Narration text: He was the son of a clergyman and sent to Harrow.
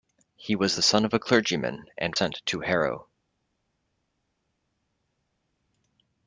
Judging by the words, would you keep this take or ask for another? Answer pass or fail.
pass